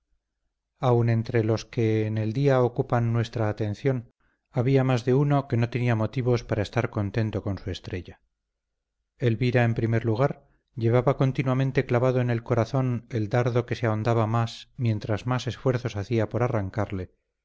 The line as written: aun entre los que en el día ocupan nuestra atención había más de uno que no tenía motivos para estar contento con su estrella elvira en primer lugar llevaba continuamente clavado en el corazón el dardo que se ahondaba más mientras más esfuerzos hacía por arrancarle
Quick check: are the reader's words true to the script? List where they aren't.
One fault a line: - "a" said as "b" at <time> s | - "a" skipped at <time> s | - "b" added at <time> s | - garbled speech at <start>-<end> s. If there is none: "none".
none